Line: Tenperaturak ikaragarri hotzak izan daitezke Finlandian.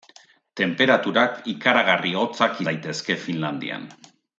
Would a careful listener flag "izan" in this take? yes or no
yes